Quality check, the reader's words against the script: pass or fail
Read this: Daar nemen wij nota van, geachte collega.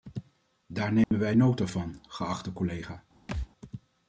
pass